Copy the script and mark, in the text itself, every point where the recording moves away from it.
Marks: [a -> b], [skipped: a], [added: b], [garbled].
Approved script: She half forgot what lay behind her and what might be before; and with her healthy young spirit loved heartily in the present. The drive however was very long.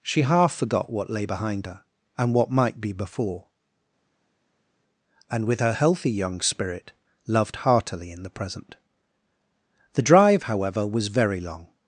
She half forgot what lay behind her and what might be before; and with her healthy young spirit loved heartily in the present. The drive however was very long.